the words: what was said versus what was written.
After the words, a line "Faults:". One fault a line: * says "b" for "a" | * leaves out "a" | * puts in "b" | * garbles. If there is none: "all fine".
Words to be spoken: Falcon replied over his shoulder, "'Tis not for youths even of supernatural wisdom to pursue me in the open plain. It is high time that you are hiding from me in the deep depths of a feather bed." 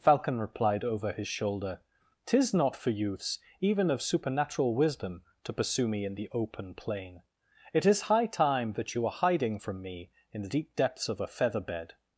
Falcon replied over his shoulder, "'Tis not for youths even of supernatural wisdom to pursue me in the open plain. It is high time that you are hiding from me in the deep depths of a feather bed."
Faults:
all fine